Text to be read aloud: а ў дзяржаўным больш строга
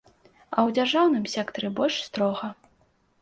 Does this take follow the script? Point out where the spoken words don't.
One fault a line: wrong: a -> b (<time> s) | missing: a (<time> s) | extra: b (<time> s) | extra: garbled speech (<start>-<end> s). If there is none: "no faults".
extra: сектары (1.3 s)